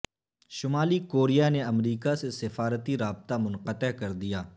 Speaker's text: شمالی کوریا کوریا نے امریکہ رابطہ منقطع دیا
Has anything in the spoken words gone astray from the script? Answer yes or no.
yes